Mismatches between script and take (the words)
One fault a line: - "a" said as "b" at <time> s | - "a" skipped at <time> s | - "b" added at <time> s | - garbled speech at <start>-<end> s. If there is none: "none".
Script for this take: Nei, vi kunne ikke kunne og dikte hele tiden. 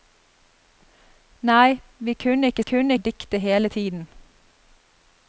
none